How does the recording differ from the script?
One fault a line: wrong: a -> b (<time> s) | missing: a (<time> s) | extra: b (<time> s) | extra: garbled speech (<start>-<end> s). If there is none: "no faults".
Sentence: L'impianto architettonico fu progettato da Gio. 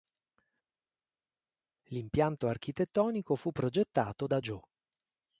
no faults